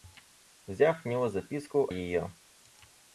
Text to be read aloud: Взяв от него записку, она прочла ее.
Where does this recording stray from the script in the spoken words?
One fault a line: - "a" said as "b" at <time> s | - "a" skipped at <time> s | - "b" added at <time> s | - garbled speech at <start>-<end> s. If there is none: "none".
- "от" skipped at 1.0 s
- "она прочла" skipped at 1.9 s